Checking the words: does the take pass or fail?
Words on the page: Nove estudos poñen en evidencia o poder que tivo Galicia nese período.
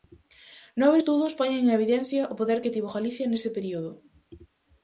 pass